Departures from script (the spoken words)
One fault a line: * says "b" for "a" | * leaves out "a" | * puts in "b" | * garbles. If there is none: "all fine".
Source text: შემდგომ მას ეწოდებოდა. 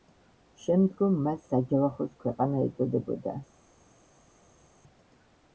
* puts in "საჯავახოს ქვეყანა"